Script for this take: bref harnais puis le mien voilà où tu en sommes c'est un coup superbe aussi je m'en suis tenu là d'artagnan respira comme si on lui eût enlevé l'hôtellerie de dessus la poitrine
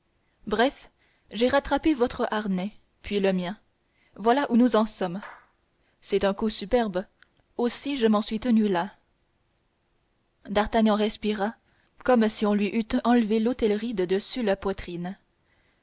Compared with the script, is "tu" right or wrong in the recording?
wrong